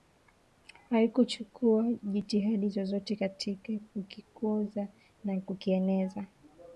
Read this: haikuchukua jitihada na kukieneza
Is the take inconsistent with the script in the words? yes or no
yes